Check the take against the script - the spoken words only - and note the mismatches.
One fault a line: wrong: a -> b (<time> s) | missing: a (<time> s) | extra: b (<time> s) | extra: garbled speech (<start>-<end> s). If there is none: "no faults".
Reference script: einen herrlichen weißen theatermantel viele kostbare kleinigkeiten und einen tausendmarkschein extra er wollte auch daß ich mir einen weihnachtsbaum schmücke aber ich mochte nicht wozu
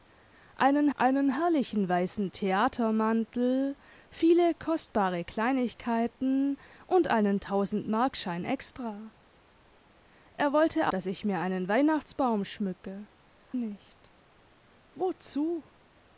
extra: einen (0.9 s)
missing: auch (10.9 s)
missing: aber ich mochte (13.1 s)